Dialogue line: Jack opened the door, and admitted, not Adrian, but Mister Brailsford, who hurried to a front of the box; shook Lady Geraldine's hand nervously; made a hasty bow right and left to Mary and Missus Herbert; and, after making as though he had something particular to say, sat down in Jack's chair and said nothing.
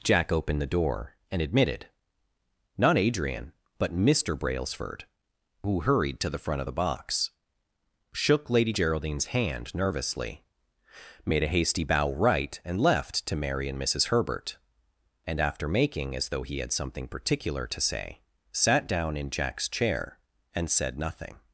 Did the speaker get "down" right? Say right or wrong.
right